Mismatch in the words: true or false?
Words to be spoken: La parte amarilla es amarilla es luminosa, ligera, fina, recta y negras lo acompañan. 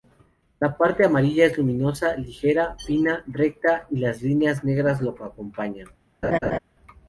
true